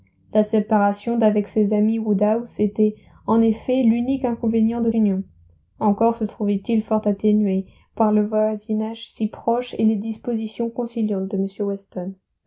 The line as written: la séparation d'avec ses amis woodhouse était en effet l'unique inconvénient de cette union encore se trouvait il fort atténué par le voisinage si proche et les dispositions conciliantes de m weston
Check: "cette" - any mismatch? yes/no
yes